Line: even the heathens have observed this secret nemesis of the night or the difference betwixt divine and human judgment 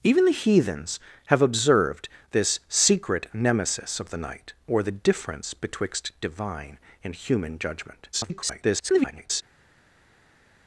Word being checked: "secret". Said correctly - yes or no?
yes